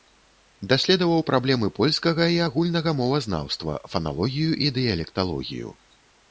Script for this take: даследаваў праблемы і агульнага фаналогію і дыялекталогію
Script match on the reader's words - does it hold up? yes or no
no